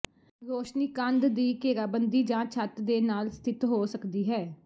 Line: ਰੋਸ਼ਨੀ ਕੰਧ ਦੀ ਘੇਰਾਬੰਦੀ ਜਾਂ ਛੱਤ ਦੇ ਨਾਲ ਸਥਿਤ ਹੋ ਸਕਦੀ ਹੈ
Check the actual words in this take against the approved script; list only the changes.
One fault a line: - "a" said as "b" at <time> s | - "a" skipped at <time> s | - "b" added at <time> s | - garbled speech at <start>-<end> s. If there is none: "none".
none